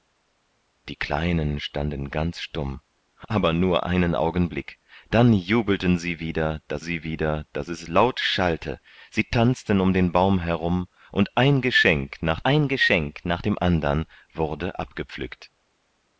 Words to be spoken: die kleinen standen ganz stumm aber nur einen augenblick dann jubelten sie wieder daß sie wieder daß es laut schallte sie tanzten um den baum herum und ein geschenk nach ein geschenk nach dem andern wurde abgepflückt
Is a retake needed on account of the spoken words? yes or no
no